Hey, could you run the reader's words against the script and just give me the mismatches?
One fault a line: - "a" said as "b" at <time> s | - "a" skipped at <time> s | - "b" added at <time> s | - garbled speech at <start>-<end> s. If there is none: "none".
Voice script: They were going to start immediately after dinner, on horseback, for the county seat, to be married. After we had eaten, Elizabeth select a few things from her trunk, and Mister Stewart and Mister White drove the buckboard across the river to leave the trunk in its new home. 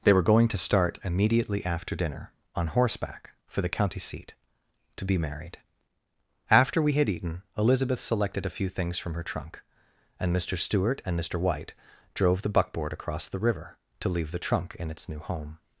- "select" said as "selected" at 8.0 s